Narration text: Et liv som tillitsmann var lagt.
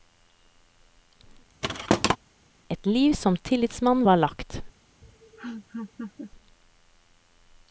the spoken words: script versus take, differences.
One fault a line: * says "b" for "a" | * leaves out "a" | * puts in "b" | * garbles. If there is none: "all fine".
all fine